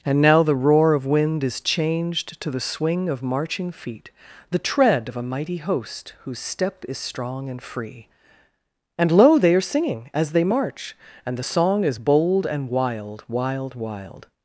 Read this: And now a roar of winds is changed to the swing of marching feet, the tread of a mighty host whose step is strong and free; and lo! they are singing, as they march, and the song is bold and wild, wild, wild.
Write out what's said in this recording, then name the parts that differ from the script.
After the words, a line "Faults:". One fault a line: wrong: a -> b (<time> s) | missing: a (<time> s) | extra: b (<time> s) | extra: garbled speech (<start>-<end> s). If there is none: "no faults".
And now the roar of wind is changed to the swing of marching feet, the tread of a mighty host whose step is strong and free; and lo! they are singing, as they march, and the song is bold and wild, wild, wild.
Faults:
wrong: a -> the (0.4 s)
wrong: winds -> wind (1.1 s)